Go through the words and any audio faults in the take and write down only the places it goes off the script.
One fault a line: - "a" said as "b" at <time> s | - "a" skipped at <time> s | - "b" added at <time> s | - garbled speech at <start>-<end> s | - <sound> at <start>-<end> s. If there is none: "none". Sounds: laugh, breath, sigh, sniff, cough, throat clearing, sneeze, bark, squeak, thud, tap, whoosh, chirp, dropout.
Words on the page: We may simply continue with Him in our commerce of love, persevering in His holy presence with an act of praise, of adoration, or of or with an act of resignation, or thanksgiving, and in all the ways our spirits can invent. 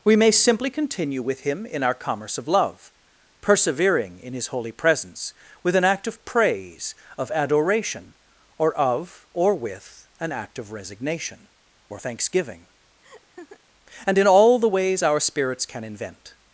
- laugh at 13.0-13.6 s